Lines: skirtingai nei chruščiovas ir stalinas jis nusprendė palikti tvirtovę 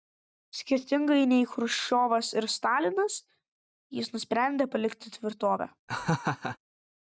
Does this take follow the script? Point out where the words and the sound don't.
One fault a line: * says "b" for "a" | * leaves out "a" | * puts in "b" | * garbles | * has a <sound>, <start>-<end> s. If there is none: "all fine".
* has a laugh, 5.9-6.6 s